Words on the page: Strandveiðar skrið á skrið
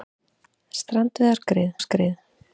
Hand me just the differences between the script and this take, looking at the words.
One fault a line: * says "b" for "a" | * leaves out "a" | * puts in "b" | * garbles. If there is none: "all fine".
all fine